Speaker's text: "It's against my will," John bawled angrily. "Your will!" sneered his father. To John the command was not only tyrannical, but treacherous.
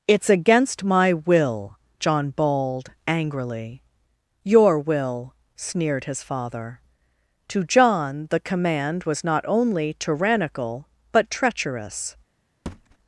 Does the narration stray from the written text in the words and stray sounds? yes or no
yes